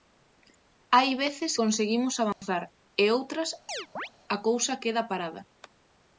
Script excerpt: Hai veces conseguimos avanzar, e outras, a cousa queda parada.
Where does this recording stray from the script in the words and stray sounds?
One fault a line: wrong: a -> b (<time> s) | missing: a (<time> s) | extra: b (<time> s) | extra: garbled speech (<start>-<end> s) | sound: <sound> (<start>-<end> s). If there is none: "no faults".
sound: dropout (2.3-2.4 s)
sound: chirp (3.7-4.1 s)